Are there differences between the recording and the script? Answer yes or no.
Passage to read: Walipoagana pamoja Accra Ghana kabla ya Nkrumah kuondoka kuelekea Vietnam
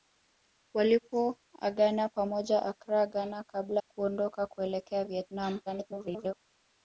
yes